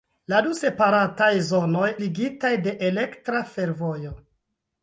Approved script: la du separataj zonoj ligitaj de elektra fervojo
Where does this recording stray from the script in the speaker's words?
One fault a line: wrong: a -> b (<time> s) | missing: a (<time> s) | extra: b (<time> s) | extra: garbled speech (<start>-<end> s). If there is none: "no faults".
no faults